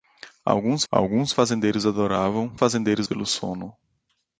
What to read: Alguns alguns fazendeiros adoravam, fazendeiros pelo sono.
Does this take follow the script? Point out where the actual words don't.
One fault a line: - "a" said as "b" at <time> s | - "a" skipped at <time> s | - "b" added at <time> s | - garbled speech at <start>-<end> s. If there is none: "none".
none